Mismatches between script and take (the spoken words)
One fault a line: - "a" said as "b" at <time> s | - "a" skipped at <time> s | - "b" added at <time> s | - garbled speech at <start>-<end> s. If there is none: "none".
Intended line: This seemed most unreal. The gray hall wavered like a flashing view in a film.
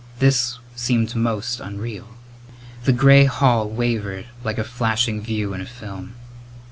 none